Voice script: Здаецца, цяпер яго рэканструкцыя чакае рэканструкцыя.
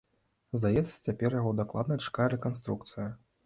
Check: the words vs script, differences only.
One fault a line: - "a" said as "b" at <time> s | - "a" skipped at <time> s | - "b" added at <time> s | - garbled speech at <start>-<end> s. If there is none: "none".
- "рэканструкцыя" said as "дакладна" at 1.6 s